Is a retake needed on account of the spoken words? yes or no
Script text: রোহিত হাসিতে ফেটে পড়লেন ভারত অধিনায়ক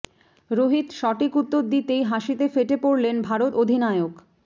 yes